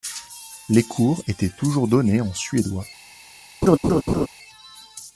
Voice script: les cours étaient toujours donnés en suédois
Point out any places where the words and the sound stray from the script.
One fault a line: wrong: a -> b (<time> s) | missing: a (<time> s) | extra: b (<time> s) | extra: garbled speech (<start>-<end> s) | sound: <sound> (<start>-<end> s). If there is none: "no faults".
sound: laugh (3.6-4.3 s)